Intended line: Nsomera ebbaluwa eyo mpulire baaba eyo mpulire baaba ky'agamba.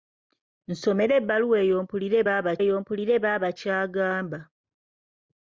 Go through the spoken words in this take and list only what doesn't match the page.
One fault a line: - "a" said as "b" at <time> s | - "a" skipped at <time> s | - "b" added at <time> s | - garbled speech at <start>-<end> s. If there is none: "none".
none